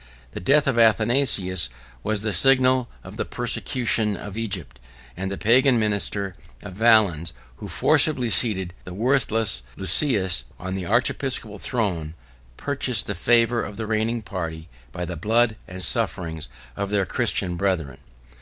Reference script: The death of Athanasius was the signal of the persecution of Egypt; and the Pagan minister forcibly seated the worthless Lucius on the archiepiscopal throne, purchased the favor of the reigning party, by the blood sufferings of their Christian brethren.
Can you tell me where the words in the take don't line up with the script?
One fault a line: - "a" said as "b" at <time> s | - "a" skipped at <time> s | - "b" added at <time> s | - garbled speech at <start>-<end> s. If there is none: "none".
- "of Valens who" added at 6.6 s
- "and" added at 15.7 s